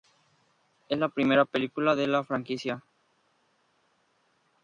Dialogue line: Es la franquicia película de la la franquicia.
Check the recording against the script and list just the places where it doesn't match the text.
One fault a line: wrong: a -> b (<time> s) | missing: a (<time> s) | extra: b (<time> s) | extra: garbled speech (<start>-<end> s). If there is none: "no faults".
wrong: franquicia -> primera (1.1 s)
missing: la (2.2 s)